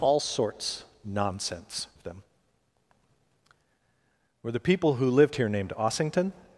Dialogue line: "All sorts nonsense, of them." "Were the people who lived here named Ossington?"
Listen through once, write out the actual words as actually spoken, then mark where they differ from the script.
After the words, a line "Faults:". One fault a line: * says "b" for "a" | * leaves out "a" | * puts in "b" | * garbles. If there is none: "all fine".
"All sorts nonsense, of them." "Were the people who lived here named Ossington?"
Faults:
all fine